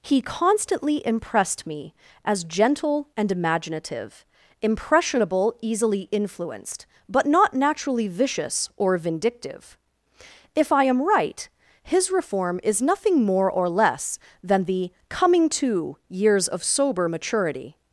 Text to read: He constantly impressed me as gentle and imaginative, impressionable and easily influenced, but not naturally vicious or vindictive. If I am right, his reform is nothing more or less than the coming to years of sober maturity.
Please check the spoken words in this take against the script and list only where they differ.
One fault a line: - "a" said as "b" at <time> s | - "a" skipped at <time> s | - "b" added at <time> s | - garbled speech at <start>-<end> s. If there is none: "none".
- "and" skipped at 5.5 s